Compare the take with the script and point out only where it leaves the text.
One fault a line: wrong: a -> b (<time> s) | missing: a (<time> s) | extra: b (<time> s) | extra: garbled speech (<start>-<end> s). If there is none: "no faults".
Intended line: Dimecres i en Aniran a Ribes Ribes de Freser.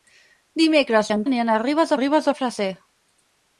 no faults